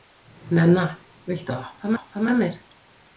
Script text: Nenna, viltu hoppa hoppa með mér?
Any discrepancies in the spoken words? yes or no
no